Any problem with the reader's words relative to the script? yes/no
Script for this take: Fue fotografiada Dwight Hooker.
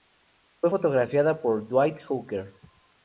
yes